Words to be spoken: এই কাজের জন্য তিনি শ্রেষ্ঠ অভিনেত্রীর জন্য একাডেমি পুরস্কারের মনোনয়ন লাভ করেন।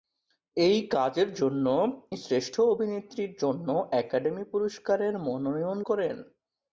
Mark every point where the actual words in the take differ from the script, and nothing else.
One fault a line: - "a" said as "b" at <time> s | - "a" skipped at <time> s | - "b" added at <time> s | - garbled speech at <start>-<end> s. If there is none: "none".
- "তিনি" skipped at 1.6 s
- "লাভ" skipped at 5.8 s